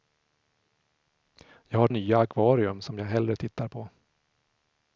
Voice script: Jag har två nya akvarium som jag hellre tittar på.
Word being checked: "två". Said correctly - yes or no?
no